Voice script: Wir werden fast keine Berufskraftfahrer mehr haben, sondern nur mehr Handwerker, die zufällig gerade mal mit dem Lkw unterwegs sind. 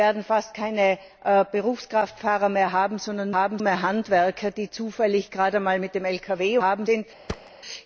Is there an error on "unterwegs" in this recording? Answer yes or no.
yes